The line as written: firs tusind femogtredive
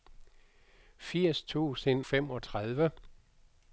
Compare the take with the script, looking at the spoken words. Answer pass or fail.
pass